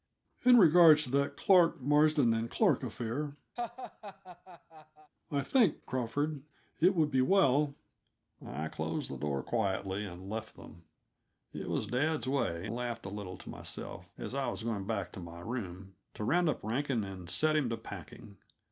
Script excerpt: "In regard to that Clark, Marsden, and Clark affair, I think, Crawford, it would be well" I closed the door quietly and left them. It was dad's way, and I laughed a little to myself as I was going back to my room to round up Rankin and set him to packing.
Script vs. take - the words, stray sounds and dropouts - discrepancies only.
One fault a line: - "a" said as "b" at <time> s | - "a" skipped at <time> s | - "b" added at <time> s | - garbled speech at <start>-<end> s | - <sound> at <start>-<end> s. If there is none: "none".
- laugh at 3.6-5.1 s
- "and I" skipped at 12.7 s